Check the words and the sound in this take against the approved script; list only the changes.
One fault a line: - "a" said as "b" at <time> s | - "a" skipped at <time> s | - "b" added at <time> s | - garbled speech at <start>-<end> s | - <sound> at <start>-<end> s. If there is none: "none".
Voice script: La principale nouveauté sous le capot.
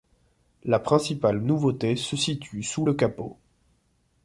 - "se situe" added at 1.9 s